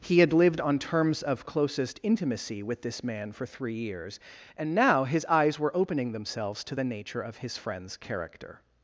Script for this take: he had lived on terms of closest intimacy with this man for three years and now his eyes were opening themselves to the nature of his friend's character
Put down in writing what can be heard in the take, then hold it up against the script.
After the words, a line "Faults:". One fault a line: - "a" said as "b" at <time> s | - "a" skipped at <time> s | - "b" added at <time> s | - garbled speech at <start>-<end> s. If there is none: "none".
he had lived on terms of closest intimacy with this man for three years and now his eyes were opening themselves to the nature of his friend's character
Faults:
none